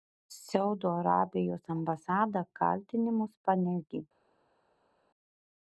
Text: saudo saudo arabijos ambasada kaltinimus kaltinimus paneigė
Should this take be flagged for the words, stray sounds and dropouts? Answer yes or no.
yes